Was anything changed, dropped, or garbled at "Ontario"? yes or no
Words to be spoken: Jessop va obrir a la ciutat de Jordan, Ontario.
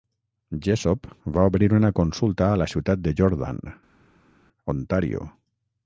no